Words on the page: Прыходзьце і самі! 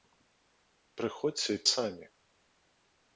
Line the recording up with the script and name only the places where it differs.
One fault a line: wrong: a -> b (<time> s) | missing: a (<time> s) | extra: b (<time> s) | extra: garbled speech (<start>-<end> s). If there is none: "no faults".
no faults